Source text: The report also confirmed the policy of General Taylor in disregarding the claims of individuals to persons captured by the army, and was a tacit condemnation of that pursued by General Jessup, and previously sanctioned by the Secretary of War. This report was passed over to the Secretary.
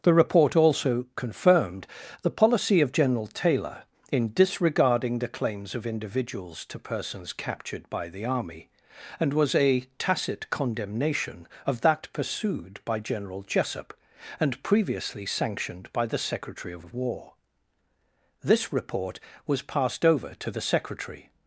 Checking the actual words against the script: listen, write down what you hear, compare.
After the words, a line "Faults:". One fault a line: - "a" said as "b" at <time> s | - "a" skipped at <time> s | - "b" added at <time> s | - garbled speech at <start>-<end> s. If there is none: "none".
The report also confirmed the policy of General Taylor in disregarding the claims of individuals to persons captured by the army, and was a tacit condemnation of that pursued by General Jessup, and previously sanctioned by the Secretary of of War. This report was passed over to the Secretary.
Faults:
- "of" added at 16.8 s